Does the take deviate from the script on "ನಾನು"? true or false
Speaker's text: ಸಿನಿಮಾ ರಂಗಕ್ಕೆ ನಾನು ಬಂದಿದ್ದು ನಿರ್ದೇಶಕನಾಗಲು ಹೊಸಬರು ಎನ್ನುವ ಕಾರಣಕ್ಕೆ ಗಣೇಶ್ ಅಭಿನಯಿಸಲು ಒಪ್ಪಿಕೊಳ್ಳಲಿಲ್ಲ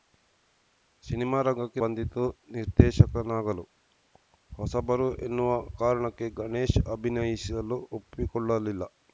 true